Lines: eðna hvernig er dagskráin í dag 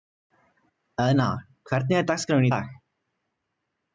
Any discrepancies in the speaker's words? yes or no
no